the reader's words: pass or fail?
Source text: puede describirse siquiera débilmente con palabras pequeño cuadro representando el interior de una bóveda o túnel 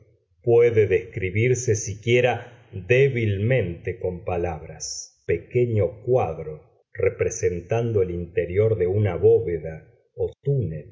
pass